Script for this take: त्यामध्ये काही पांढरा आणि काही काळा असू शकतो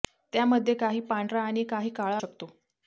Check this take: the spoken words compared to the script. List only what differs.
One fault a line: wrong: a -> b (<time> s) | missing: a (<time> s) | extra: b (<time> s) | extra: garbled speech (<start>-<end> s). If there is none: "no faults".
missing: असू (2.2 s)